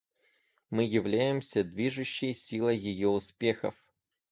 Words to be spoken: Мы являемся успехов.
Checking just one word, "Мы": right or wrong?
right